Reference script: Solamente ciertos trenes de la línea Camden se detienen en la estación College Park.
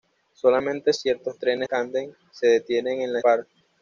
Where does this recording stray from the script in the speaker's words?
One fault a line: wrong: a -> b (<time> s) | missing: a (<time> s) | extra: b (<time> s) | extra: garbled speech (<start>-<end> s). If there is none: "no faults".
missing: de la línea (1.7 s)
missing: estación College (3.2 s)